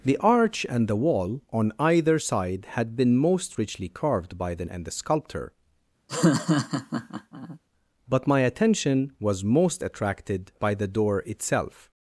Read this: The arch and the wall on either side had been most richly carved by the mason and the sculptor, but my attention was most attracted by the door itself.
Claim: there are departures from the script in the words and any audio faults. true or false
true